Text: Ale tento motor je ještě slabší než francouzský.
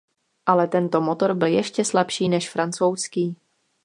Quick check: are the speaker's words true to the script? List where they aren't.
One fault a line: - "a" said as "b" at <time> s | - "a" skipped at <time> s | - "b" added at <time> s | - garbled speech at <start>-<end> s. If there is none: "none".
- "je" said as "byl" at 1.3 s